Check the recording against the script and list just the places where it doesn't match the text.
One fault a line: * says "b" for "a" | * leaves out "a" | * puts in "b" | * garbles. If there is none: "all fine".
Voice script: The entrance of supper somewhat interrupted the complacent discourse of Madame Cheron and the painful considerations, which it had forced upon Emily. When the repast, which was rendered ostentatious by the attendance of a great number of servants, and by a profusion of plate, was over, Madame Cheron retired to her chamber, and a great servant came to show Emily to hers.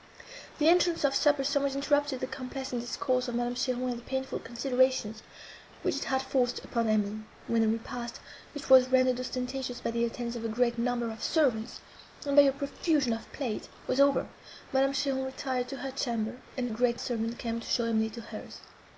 all fine